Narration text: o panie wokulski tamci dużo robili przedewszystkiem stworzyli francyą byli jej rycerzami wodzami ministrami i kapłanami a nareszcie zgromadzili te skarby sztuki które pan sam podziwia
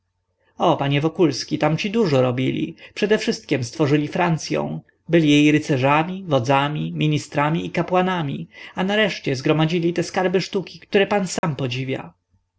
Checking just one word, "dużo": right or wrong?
right